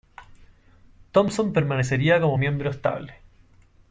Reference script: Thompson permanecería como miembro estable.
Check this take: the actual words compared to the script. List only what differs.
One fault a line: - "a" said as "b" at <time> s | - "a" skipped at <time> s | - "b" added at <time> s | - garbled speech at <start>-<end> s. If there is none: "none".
none